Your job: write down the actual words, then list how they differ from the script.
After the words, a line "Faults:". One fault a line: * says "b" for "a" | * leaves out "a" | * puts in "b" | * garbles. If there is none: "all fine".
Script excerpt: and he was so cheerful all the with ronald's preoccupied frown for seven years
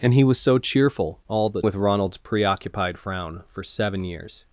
and he was so cheerful all the with ronald's preoccupied frown for seven years
Faults:
all fine